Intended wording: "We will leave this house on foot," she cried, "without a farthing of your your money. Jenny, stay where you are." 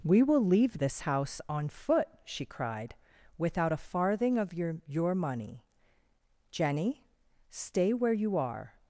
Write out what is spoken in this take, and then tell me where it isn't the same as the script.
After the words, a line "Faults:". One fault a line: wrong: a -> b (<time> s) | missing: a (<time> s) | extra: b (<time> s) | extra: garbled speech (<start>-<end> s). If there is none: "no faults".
"We will leave this house on foot," she cried, "without a farthing of your your money. Jenny, stay where you are."
Faults:
no faults